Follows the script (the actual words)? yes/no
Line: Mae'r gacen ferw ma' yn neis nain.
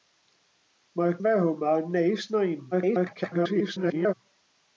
no